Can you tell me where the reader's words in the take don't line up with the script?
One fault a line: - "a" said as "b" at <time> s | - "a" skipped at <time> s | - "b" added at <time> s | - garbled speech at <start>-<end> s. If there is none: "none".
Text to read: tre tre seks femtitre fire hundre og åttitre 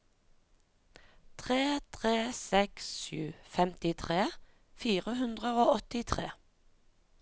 - "sju" added at 3.0 s